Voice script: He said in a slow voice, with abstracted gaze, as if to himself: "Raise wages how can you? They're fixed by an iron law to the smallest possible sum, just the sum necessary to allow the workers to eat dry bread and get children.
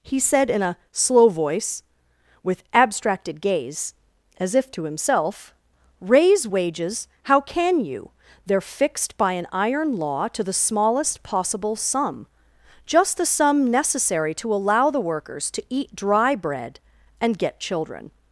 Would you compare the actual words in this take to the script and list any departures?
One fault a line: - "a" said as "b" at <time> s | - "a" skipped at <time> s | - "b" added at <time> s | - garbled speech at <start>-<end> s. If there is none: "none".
none